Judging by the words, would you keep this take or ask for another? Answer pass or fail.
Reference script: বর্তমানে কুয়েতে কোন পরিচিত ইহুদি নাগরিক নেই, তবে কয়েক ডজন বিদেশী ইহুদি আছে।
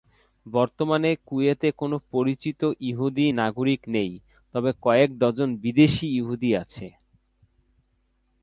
pass